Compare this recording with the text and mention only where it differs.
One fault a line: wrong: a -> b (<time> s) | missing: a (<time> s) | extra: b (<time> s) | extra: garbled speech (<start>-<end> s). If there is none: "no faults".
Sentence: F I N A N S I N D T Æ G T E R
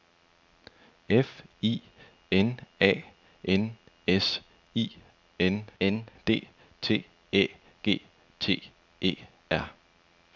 extra: N (5.8 s)